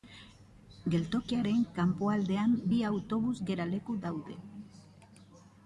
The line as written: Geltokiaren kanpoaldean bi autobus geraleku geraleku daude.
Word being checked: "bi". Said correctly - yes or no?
yes